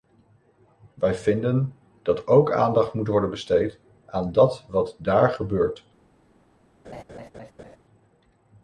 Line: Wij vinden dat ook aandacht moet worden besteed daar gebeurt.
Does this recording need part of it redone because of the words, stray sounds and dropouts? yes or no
yes